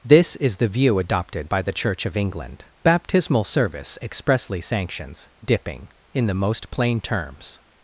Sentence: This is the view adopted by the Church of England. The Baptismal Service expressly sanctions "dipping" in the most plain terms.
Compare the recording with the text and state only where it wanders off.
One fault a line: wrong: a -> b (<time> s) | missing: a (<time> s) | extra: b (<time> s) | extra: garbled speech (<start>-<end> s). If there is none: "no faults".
missing: The (2.6 s)